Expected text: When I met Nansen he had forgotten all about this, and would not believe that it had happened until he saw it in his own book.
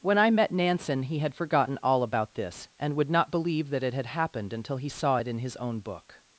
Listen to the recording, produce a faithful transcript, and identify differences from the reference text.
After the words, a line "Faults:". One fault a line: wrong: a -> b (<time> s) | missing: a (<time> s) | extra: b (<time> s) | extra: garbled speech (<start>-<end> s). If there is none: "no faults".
When I met Nansen he had forgotten all about this, and would not believe that it had happened until he saw it in his own book.
Faults:
no faults